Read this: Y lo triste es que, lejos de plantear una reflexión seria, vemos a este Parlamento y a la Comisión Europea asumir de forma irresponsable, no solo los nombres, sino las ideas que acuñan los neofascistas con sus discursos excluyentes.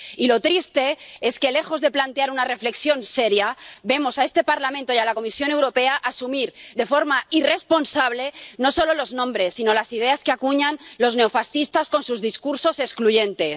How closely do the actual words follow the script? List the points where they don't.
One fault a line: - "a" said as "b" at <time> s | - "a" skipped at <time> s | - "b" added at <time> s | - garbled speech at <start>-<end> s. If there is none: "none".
none